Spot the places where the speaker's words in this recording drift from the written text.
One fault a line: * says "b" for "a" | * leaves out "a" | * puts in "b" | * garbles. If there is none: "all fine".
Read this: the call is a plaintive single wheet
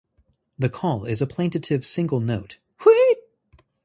* puts in "note"